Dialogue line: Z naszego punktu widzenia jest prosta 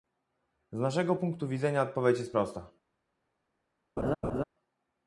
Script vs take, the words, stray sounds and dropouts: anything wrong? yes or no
yes